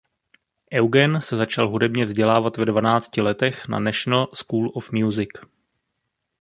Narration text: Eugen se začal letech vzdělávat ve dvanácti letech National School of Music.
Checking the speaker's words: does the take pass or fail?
fail